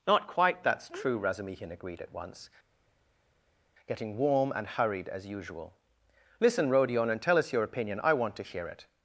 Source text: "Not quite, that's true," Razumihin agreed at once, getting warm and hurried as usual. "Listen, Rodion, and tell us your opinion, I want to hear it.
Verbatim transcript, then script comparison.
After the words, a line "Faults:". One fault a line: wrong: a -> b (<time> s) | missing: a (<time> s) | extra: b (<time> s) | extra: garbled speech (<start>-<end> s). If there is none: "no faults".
"Not quite, that's true," Razumihin agreed at once, getting warm and hurried as usual. "Listen, Rodion, and tell us your opinion, I want to hear it.
Faults:
no faults